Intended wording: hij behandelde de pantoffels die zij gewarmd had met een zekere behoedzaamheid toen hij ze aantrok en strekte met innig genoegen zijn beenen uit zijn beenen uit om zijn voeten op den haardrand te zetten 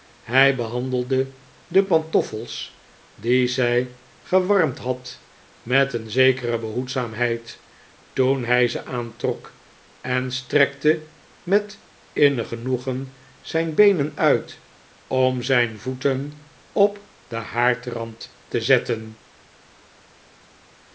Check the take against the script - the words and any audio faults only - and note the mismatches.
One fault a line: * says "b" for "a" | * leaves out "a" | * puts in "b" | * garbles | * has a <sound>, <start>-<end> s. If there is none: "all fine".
* leaves out "zijn beenen uit"